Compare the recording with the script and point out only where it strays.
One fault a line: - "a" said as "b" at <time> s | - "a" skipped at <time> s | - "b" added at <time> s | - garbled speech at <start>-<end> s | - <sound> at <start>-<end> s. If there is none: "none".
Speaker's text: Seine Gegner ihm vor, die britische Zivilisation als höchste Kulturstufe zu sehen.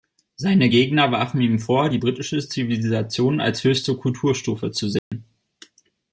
- "warfen" added at 1.1 s
- dropout at 5.0-5.1 s